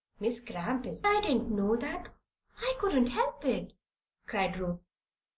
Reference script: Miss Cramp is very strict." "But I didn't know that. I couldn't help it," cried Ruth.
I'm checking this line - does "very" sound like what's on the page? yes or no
no